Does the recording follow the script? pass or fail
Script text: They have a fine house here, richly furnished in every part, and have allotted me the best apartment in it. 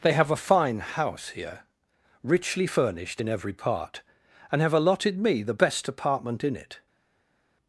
pass